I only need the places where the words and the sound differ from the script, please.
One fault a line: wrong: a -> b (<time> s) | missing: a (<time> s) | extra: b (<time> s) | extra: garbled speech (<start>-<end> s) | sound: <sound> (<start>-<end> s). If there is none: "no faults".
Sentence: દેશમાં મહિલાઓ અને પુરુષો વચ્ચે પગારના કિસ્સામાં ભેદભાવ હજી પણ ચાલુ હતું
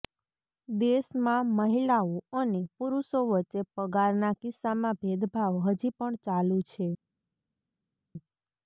wrong: હતું -> છે (6.7 s)